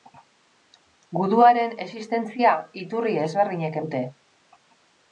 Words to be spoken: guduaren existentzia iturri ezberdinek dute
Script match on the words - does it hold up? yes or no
yes